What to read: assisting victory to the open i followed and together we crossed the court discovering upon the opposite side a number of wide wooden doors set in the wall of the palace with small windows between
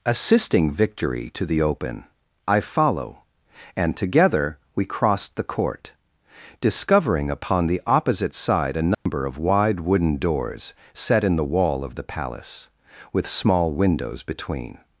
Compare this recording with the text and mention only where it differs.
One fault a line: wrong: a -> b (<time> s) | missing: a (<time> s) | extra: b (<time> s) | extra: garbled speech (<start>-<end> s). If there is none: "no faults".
wrong: followed -> follow (2.6 s)